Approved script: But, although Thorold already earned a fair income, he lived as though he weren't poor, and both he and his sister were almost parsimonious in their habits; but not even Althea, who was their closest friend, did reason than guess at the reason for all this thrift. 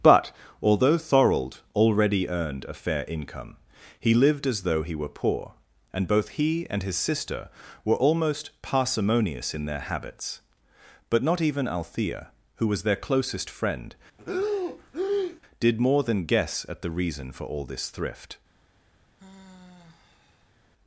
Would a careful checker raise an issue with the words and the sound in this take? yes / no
yes